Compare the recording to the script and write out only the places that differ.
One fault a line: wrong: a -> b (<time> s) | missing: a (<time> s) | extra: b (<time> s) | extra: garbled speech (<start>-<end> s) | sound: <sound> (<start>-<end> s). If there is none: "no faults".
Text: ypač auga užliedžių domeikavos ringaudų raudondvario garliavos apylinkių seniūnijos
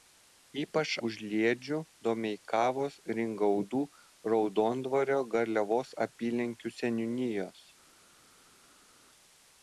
missing: auga (0.9 s)